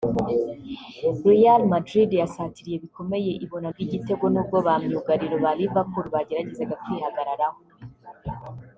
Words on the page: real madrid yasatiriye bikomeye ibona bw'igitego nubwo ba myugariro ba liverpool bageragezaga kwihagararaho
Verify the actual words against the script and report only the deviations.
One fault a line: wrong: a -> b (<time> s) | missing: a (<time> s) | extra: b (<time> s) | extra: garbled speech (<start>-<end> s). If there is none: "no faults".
no faults